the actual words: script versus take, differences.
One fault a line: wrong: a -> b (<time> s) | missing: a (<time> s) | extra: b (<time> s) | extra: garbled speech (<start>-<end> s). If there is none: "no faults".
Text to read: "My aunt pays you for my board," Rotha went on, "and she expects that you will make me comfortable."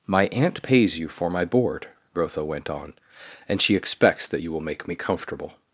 no faults